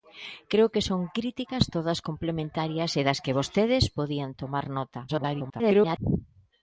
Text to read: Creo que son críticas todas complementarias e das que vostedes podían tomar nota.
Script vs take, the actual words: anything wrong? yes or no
yes